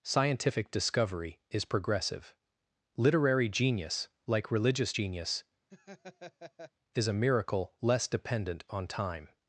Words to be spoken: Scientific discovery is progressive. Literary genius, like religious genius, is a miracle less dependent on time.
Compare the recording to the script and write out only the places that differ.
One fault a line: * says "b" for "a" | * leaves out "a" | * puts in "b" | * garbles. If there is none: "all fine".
all fine